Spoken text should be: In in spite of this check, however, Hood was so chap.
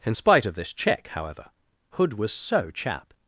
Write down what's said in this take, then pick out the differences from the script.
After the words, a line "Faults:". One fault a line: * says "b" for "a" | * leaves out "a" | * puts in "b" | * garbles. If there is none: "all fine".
In spite of this check, however, Hood was so chap.
Faults:
* leaves out "in"